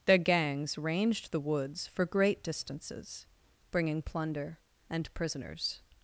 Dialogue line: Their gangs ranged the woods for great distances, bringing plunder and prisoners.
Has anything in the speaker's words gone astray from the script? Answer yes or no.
no